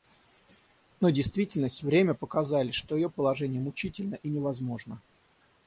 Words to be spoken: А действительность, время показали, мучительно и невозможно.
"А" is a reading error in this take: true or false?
true